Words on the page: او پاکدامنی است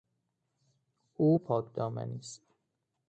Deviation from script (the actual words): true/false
false